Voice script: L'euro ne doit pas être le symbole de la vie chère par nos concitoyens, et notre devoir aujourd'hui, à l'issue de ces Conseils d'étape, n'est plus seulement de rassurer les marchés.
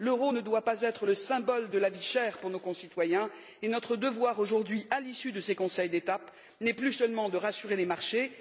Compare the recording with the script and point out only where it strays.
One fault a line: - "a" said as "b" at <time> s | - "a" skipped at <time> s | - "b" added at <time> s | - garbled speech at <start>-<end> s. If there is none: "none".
- "par" said as "pour" at 2.4 s